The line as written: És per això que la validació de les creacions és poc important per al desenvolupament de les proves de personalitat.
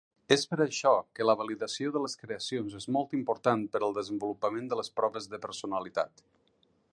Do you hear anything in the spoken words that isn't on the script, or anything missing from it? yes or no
yes